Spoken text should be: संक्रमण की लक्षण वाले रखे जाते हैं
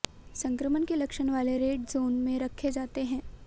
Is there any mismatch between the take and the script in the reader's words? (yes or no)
yes